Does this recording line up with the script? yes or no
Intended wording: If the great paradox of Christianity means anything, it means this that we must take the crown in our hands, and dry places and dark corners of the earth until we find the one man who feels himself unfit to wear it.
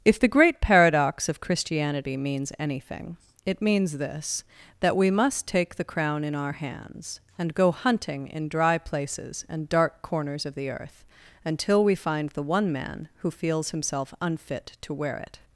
no